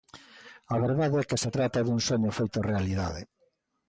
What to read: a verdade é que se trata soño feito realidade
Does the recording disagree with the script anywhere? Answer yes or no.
yes